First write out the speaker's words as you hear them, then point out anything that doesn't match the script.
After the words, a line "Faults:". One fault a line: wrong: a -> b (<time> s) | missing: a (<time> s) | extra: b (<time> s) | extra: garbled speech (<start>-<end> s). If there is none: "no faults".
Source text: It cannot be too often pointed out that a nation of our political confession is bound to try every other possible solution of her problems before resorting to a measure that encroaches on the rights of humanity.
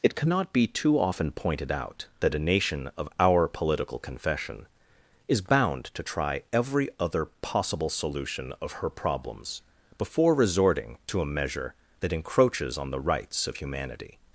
It cannot be too often pointed out that a nation of our political confession is bound to try every other possible solution of her problems before resorting to a measure that encroaches on the rights of humanity.
Faults:
no faults